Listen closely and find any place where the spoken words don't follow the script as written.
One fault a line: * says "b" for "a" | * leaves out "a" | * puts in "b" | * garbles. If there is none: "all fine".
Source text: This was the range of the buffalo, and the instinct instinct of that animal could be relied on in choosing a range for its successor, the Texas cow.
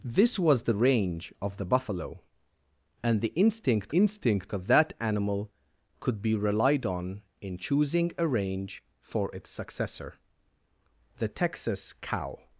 all fine